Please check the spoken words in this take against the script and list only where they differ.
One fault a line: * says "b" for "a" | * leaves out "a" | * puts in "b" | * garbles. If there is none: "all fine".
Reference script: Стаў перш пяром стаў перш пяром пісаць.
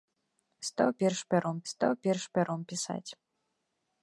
all fine